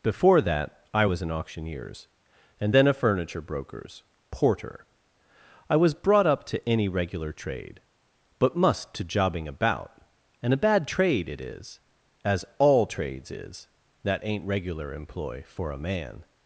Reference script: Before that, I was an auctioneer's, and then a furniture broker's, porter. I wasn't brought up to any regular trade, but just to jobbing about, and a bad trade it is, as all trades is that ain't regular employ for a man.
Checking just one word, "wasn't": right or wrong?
wrong